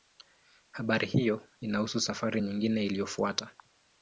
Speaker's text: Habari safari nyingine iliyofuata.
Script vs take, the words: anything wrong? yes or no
yes